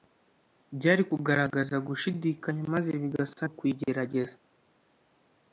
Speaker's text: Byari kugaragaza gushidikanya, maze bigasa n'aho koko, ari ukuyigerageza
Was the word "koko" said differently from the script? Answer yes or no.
yes